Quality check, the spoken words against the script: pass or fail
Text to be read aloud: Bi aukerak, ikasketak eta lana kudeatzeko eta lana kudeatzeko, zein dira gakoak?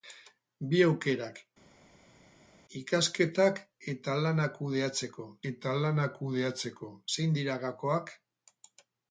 pass